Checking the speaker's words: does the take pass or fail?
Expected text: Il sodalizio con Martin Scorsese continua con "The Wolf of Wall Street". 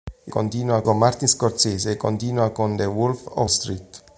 fail